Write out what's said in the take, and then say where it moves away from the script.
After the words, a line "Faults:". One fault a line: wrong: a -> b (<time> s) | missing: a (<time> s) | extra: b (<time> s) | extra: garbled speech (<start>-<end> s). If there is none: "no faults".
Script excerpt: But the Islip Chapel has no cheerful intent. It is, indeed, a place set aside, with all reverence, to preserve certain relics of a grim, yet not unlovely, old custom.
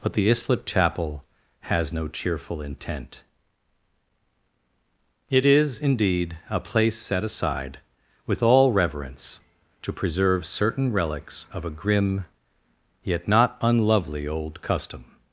But the Islip Chapel has no cheerful intent. It is, indeed, a place set aside, with all reverence, to preserve certain relics of a grim, yet not unlovely, old custom.
Faults:
no faults